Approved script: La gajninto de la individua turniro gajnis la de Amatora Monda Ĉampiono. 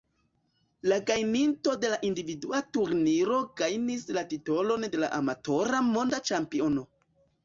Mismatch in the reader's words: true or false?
true